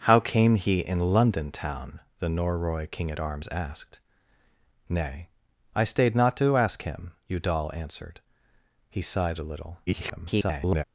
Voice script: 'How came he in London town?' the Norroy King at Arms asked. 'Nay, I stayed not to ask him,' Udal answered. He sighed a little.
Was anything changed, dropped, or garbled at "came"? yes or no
no